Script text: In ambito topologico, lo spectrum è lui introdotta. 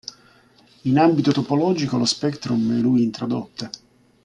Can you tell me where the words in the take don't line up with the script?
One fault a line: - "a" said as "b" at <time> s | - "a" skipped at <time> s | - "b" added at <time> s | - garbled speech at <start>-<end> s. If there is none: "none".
none